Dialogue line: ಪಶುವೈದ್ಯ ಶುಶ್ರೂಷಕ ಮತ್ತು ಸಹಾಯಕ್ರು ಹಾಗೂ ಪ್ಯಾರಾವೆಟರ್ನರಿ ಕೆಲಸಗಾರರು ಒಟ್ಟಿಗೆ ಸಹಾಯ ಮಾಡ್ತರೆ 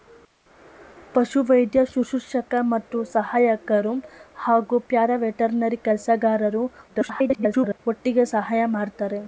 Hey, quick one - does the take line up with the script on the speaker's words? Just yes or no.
no